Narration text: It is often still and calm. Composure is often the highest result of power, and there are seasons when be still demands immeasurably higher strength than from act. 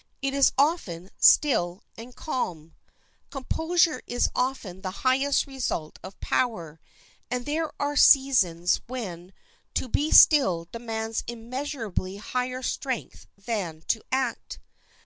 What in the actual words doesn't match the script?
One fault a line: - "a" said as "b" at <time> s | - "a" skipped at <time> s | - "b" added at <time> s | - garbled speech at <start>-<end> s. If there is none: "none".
- "to" added at 9.7 s
- "from" said as "to" at 13.9 s